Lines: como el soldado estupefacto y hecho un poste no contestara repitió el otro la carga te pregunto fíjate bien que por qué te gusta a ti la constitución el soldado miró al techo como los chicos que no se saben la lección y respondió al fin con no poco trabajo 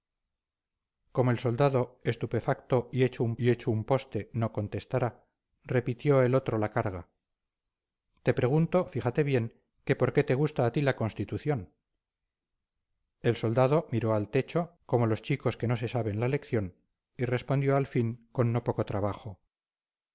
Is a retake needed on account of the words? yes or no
yes